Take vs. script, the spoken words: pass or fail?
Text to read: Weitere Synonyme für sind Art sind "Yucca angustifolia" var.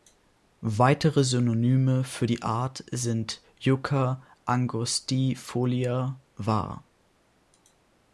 fail